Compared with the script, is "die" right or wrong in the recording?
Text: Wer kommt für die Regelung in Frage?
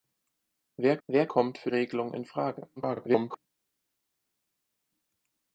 wrong